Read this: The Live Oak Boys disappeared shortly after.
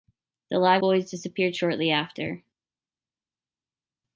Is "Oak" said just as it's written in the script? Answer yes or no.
no